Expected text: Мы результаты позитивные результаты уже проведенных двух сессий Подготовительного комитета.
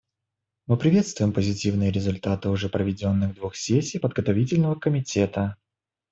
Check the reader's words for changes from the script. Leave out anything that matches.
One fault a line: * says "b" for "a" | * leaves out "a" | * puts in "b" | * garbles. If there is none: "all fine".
* says "приветствуем" for "результаты"